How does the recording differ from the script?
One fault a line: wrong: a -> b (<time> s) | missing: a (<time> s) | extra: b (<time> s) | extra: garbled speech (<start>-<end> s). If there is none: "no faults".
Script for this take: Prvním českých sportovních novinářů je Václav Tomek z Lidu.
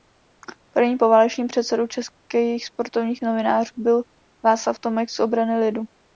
extra: poválečným předsedou (1.0 s)
wrong: je -> byl (3.8 s)
extra: Obrany (5.2 s)